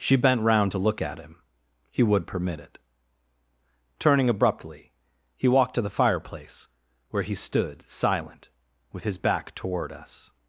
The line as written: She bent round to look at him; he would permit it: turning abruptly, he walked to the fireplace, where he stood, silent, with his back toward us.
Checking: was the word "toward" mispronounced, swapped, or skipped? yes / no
no